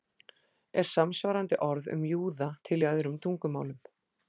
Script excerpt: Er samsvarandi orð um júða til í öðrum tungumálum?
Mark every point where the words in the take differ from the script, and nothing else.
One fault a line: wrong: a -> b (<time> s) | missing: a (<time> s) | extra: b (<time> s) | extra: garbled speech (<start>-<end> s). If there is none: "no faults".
no faults